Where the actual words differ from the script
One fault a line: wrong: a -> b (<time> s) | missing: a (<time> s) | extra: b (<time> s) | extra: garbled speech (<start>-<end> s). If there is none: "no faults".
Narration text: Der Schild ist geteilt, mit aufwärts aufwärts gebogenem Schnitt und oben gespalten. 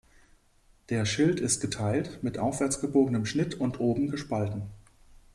missing: aufwärts (2.8 s)